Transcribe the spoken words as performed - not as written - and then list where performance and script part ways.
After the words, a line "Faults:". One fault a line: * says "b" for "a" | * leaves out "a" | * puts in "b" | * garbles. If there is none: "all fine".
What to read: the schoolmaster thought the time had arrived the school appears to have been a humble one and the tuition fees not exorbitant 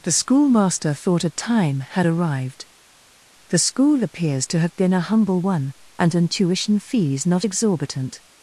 the schoolmaster thought a time had arrived the school appears to have been a humble one and an tuition fees not exorbitant
Faults:
* says "a" for "the"
* says "an" for "the"